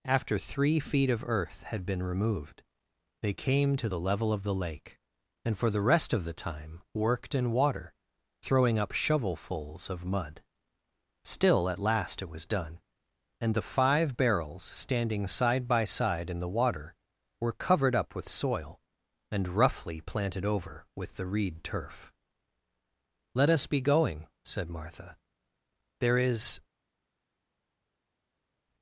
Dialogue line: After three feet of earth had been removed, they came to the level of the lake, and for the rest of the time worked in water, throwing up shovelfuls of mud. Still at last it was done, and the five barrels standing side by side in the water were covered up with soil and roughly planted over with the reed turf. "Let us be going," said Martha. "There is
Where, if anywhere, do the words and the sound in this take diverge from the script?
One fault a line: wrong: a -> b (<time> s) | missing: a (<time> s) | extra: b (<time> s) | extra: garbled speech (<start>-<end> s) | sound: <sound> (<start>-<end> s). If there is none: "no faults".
no faults